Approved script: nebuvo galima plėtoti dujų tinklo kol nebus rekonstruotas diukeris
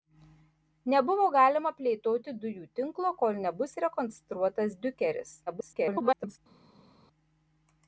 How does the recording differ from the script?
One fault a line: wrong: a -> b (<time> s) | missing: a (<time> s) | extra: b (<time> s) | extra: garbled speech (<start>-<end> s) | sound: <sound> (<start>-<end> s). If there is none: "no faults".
extra: garbled speech (5.5-6.4 s)